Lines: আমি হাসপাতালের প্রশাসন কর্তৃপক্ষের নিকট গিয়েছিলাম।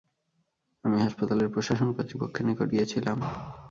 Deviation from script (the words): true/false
false